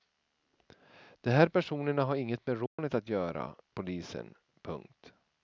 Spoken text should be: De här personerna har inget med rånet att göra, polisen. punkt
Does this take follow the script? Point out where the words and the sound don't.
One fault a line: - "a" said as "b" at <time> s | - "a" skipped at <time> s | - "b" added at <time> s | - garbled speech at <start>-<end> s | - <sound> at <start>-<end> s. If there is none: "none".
- dropout at 2.7-2.8 s